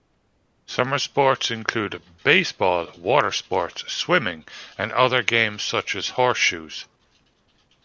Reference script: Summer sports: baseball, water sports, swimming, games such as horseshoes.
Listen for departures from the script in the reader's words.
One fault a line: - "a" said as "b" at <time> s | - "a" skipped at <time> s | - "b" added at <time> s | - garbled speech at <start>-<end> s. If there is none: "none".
- "include" added at 1.5 s
- "and other" added at 4.8 s